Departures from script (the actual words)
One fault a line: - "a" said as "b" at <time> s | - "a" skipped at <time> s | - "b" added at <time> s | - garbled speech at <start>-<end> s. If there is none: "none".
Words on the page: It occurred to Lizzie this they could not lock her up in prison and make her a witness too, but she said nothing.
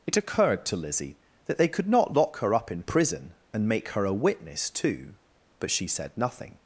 - "this" said as "that" at 1.4 s